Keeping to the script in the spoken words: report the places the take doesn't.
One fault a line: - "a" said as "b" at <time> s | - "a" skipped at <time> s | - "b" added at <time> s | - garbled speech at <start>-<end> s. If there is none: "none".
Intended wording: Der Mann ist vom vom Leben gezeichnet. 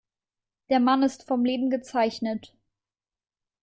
- "vom" skipped at 1.4 s